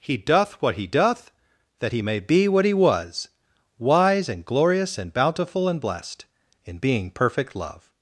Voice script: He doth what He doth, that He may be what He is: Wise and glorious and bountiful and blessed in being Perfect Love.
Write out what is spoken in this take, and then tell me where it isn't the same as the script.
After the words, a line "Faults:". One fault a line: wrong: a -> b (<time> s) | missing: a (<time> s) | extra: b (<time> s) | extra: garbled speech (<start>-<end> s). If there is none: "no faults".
He doth what He doth, that He may be what He was: Wise and glorious and bountiful and blessed in being Perfect Love.
Faults:
wrong: is -> was (2.7 s)